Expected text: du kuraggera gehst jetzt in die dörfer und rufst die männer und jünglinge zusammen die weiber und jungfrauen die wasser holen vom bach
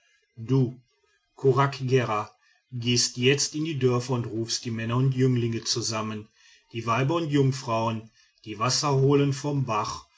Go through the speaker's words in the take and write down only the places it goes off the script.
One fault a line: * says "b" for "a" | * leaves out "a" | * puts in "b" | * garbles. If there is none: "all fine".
all fine